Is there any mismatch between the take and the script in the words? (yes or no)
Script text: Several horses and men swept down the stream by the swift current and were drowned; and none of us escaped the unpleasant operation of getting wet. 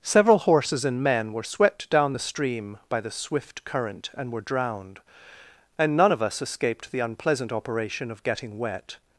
yes